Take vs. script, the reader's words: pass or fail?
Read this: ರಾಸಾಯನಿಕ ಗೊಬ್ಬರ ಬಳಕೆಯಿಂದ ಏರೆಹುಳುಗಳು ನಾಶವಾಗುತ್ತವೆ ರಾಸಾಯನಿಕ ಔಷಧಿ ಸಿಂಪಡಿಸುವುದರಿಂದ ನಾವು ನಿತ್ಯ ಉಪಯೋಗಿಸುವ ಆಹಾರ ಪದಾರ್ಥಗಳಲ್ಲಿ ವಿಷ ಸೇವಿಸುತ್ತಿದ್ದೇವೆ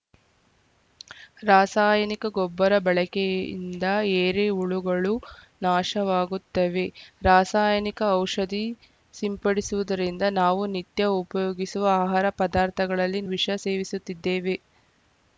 pass